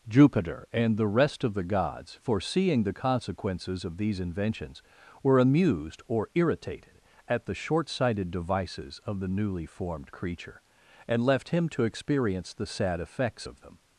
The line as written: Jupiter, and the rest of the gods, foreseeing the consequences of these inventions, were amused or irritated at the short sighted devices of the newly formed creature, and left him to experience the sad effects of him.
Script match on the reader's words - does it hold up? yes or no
no